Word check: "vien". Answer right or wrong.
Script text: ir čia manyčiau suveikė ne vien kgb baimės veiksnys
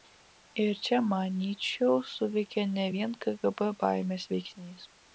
right